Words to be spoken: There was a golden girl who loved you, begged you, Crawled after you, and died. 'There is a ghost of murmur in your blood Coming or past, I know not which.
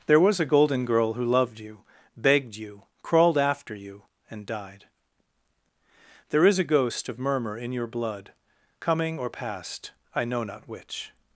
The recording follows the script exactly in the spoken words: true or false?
true